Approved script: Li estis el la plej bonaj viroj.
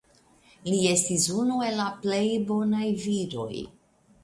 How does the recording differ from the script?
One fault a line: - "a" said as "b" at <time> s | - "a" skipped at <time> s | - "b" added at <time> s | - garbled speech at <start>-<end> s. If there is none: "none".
- "unu" added at 1.4 s